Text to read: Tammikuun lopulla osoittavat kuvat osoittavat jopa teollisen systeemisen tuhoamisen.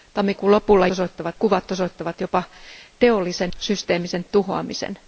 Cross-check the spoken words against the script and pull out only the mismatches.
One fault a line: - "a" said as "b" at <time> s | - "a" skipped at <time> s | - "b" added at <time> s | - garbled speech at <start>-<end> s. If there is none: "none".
none